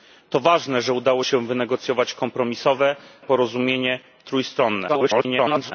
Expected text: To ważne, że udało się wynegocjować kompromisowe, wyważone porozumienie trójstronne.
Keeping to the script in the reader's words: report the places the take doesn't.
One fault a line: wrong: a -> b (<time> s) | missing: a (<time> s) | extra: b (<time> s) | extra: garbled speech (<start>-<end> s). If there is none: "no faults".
missing: wyważone (2.9 s)
extra: garbled speech (4.9-5.7 s)